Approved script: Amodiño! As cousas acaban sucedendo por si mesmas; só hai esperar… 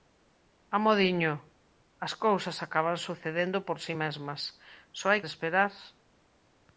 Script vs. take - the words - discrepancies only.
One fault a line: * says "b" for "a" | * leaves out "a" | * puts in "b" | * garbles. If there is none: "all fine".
all fine